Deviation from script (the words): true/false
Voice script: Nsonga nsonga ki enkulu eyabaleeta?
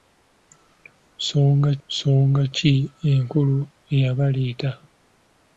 false